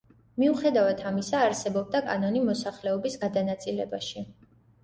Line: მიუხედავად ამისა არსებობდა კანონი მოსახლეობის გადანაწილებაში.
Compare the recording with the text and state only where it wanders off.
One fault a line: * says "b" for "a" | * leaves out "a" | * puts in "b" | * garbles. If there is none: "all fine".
all fine